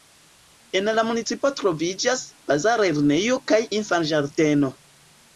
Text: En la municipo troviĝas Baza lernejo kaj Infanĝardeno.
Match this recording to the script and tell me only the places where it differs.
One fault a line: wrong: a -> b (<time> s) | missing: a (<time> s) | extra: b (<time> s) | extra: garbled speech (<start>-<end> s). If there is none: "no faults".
no faults